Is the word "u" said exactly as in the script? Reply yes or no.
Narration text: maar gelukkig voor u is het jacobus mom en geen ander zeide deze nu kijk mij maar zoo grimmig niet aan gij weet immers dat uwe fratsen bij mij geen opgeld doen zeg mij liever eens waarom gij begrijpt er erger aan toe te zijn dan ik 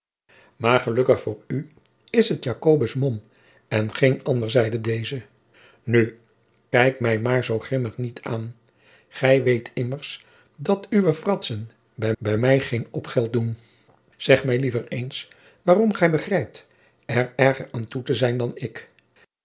yes